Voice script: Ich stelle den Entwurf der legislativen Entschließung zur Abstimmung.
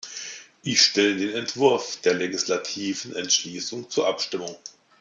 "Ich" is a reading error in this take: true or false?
false